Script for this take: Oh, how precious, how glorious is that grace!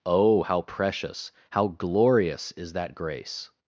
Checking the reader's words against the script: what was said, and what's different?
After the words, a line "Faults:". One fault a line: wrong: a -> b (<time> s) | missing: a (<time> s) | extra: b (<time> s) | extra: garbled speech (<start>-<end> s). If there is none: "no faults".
Oh, how precious, how glorious is that grace!
Faults:
no faults